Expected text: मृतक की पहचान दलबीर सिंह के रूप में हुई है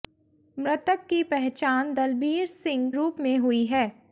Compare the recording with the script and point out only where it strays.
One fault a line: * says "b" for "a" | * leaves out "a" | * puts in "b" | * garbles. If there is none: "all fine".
* leaves out "के"